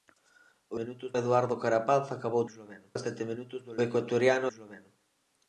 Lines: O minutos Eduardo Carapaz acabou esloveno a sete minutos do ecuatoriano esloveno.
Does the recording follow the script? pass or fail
pass